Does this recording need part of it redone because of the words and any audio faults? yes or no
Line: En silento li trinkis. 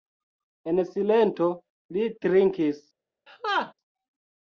yes